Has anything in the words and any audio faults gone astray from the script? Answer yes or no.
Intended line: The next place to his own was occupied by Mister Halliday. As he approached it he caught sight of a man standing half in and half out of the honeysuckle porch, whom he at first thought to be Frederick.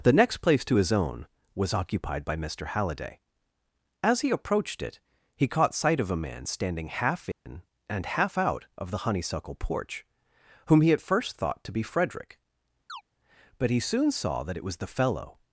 yes